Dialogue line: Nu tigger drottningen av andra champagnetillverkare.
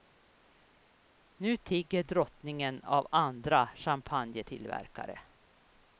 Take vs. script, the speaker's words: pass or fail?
pass